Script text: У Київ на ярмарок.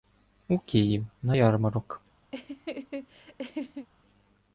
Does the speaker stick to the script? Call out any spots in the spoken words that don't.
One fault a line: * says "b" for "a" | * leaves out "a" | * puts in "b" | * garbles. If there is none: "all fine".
all fine